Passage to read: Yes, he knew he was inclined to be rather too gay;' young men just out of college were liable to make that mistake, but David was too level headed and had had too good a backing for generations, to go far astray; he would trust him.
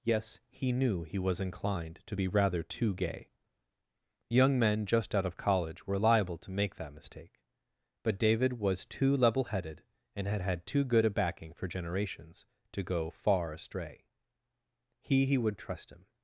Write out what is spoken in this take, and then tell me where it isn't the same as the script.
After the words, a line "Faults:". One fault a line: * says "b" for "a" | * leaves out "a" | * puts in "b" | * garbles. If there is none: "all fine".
Yes, he knew he was inclined to be rather too gay;' young men just out of college were liable to make that mistake, but David was too level headed and had had too good a backing for generations, to go far astray; he he would trust him.
Faults:
* puts in "he"